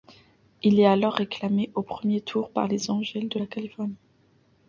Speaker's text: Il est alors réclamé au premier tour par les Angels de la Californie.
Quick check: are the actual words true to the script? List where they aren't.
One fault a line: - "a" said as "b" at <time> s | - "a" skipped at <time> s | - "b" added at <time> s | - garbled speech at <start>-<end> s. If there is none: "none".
none